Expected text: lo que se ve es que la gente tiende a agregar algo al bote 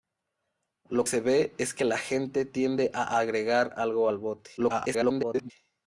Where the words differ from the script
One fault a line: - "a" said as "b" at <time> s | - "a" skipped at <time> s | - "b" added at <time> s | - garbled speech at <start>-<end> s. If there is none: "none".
- "que" skipped at 1.1 s
- garbled speech at 4.6-5.5 s